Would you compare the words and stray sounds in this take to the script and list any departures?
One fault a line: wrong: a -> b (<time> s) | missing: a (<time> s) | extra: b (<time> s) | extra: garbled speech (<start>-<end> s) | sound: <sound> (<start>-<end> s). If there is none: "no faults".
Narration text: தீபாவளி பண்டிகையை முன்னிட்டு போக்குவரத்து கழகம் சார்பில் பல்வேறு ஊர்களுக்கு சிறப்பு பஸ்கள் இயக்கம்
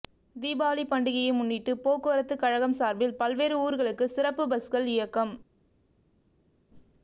no faults